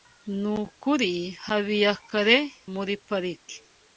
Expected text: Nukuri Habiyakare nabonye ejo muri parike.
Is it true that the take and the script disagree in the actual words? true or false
true